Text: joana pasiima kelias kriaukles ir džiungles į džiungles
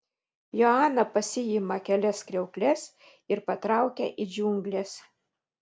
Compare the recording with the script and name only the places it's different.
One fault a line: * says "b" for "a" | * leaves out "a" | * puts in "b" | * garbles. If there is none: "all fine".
* says "patraukia" for "džiungles"